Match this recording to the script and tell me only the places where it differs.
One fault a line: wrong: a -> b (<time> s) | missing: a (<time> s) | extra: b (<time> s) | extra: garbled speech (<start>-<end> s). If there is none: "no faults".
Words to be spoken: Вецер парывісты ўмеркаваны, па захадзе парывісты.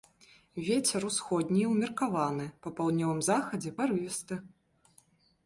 wrong: парывісты -> усходні (1.1 s)
extra: паўднёвым (2.8 s)